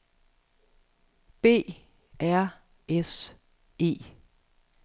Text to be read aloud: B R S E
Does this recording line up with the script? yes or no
yes